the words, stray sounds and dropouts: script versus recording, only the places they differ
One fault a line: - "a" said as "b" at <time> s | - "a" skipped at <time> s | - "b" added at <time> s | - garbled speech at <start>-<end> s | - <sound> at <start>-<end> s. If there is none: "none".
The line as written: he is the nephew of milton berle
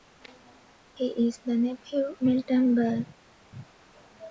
- "of" skipped at 2.2 s